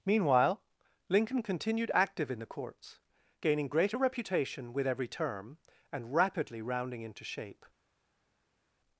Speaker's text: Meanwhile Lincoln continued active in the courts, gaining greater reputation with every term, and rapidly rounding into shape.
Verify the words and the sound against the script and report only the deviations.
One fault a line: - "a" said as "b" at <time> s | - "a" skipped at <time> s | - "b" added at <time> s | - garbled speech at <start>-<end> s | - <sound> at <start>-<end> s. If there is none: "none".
none